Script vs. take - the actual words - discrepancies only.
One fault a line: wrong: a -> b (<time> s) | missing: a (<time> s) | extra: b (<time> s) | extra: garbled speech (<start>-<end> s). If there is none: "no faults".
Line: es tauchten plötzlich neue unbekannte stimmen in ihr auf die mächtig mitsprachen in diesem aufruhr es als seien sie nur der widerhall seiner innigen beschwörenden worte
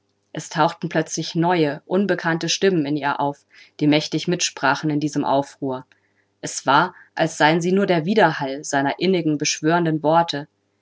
extra: war (6.7 s)